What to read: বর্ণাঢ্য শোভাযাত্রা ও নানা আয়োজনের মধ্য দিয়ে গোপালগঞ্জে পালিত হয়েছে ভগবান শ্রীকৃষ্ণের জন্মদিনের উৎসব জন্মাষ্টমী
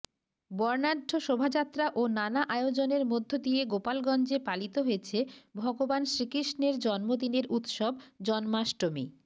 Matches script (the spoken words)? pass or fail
pass